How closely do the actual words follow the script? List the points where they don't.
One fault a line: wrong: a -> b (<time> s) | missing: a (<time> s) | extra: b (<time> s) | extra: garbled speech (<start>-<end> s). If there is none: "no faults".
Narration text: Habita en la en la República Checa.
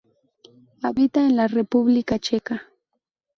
missing: en la (1.5 s)